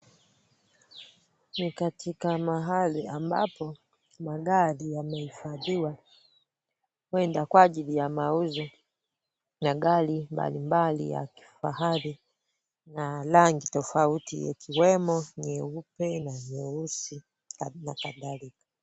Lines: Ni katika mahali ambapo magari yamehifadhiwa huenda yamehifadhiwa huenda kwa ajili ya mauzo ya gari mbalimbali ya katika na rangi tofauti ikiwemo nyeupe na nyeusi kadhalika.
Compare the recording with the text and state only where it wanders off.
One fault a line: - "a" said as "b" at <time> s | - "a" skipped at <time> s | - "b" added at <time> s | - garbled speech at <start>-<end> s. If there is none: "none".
- "yamehifadhiwa huenda" skipped at 7.5 s
- "katika" said as "kifahari" at 11.3 s
- "na" added at 17.7 s